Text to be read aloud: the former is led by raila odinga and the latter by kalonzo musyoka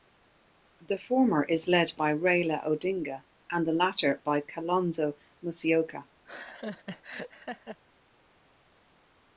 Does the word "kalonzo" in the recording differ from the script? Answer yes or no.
no